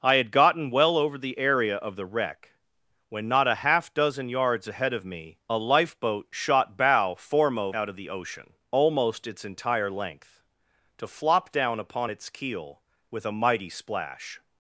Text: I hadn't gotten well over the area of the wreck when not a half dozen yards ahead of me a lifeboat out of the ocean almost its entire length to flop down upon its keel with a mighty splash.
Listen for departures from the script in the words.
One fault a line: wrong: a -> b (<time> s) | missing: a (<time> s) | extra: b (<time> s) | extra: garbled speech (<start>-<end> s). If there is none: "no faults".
wrong: hadn't -> had (0.1 s)
extra: shot bow foremost (6.3 s)